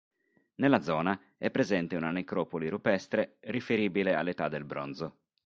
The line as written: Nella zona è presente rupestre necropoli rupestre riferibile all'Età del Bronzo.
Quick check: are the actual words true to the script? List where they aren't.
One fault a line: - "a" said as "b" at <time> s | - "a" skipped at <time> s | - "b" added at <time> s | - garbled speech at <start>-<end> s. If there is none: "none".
- "rupestre" said as "una" at 1.9 s